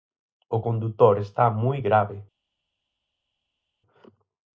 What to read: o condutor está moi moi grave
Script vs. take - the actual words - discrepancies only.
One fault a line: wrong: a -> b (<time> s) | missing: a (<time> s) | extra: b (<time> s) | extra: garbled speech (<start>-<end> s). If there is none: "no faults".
missing: moi (1.8 s)